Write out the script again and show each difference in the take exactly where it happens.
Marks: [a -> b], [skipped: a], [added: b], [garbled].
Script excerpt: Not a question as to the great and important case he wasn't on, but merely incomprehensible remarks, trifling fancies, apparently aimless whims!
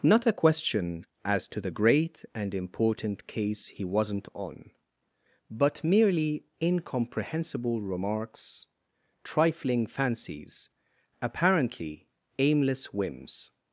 Not a question as to the great and important case he wasn't on, but merely incomprehensible remarks, trifling fancies, apparently aimless whims!